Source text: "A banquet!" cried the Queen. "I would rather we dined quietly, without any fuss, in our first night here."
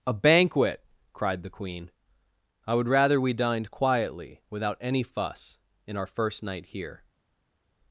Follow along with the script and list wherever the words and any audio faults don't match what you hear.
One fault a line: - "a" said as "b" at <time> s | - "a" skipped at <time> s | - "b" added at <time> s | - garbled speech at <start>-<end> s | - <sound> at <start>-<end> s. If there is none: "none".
none